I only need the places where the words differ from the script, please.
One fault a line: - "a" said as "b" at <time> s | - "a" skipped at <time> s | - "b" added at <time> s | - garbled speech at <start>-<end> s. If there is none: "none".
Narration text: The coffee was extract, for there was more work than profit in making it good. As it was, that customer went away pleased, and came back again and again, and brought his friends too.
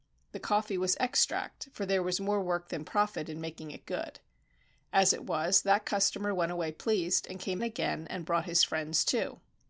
- "back again and" skipped at 7.6 s